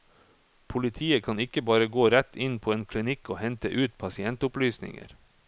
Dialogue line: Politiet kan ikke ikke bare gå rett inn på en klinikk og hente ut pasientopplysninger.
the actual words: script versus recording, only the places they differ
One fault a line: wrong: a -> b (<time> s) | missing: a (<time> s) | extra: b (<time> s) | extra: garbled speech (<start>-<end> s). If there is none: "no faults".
missing: ikke (1.6 s)